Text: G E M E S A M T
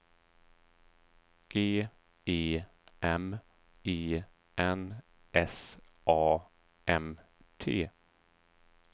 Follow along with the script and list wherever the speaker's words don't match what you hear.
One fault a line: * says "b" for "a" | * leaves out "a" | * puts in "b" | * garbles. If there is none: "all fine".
* puts in "N"